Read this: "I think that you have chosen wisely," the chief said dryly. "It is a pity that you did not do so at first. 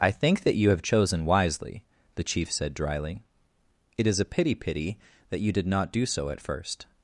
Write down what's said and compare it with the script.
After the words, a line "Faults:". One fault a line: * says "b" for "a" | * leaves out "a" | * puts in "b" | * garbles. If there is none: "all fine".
"I think that you have chosen wisely," the chief said dryly. "It is a pity pity that you did not do so at first.
Faults:
* puts in "pity"